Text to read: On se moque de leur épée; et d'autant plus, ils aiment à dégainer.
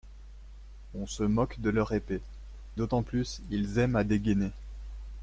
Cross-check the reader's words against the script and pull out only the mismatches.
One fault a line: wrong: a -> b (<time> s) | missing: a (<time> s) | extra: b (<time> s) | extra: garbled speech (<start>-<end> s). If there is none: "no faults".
missing: et (2.2 s)